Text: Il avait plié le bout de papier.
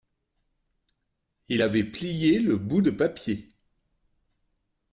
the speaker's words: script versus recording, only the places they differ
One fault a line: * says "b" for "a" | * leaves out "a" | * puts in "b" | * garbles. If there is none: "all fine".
all fine